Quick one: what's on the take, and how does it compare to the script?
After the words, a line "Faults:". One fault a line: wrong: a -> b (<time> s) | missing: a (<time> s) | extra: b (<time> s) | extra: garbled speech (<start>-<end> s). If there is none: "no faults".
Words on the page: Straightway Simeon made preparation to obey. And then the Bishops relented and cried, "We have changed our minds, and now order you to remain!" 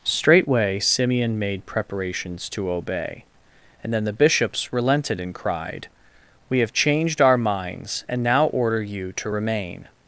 Straightway Simeon made preparations to obey. And then the Bishops relented and cried, "We have changed our minds, and now order you to remain!"
Faults:
wrong: preparation -> preparations (1.7 s)